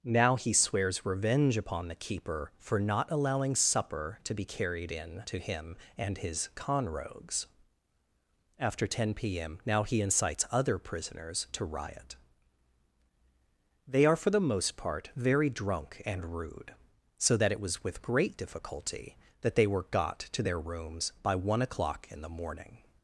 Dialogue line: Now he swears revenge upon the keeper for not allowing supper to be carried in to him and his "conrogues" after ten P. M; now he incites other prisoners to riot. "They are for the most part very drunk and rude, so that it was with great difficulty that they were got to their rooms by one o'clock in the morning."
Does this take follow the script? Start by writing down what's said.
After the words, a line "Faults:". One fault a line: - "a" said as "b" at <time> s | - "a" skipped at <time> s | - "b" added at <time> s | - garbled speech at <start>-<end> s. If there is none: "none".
Now he swears revenge upon the keeper for not allowing supper to be carried in to him and his "conrogues" after ten P. M; now he incites other prisoners to riot. "They are for the most part very drunk and rude, so that it was with great difficulty that they were got to their rooms by one o'clock in the morning."
Faults:
none